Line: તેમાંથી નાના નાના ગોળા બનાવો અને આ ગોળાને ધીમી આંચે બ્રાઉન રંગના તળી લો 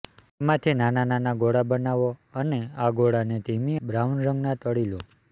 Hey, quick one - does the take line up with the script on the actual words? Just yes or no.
no